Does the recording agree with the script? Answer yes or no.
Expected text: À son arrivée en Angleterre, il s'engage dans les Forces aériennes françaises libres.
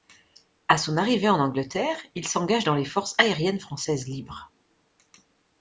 yes